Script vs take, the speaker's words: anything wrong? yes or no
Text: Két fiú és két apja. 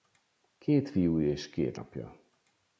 no